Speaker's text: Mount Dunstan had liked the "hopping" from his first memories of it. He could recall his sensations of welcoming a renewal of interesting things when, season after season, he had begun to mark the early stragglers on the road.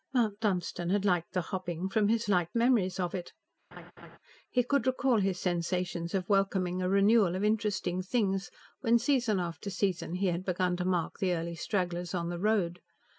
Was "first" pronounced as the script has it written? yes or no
no